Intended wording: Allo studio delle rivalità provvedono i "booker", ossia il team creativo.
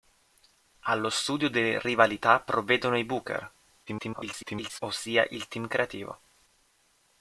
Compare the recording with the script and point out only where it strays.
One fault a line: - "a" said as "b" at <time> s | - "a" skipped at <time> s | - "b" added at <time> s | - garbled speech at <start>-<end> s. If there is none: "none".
- garbled speech at 3.9-4.8 s